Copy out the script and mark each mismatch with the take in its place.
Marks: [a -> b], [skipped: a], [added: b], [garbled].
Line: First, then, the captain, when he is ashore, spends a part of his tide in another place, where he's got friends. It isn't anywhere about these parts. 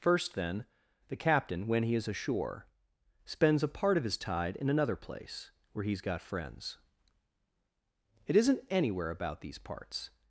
First, then, the captain, when he is ashore, spends a part of his tide in another place, where he's got friends. It isn't anywhere about these parts.